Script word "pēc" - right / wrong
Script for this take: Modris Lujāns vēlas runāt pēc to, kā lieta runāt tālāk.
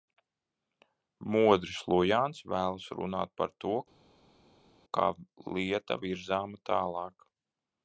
wrong